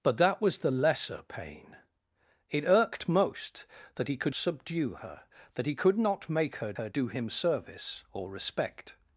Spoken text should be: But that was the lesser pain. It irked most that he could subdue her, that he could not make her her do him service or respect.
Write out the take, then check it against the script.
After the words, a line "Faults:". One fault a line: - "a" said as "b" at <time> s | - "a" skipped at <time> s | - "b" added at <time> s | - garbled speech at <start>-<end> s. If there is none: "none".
But that was the lesser pain. It irked most that he could subdue her, that he could not make her her do him service or respect.
Faults:
none